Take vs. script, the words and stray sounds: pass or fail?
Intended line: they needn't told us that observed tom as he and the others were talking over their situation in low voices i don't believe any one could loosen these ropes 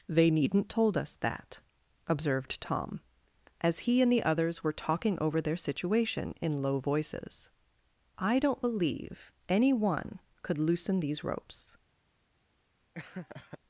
fail